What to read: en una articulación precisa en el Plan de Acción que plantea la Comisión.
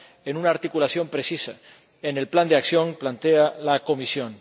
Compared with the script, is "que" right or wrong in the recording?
wrong